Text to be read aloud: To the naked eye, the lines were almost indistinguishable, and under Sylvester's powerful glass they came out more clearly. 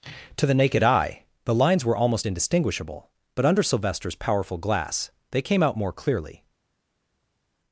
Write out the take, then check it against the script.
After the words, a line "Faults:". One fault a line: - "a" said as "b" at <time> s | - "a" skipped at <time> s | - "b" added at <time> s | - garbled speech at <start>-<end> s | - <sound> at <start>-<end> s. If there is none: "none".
To the naked eye, the lines were almost indistinguishable, but under Sylvester's powerful glass they came out more clearly.
Faults:
- "and" said as "but" at 3.3 s